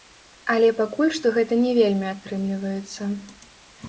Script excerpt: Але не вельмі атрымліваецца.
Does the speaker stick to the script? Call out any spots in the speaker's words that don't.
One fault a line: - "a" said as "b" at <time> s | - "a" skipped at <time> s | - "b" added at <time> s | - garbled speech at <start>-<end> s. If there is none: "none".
- "пакуль што гэта" added at 0.8 s